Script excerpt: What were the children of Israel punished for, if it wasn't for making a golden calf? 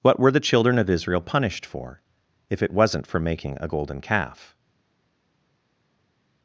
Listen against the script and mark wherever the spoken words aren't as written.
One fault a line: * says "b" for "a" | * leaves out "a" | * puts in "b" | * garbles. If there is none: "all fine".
all fine